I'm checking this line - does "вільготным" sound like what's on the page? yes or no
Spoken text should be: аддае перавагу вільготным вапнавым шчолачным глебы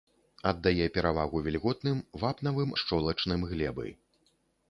yes